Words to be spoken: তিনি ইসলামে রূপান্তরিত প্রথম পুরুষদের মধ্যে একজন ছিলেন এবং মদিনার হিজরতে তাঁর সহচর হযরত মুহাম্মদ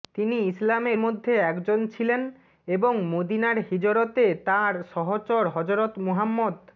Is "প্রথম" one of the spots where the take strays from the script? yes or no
yes